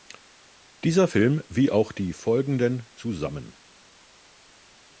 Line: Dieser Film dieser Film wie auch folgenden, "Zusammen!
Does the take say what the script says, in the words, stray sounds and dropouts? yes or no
no